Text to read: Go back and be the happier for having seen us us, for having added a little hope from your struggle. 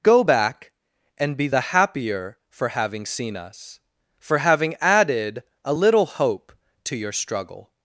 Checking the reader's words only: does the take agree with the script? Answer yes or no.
no